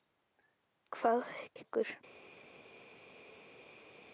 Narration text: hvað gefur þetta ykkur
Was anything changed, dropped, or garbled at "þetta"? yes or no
yes